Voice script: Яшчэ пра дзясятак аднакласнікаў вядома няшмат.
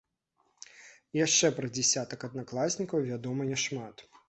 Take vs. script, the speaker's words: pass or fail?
pass